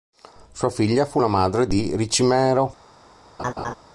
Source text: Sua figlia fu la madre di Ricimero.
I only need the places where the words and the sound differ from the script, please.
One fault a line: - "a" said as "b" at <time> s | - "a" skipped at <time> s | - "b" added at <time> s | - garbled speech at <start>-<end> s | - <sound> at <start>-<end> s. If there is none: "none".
- laugh at 3.4-3.8 s